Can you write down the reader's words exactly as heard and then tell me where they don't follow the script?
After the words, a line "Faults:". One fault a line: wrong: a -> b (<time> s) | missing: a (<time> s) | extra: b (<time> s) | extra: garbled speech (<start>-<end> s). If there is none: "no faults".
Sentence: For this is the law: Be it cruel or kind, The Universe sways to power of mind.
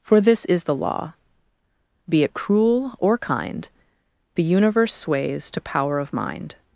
For this is the law: Be it cruel or kind, The Universe sways to power of mind.
Faults:
no faults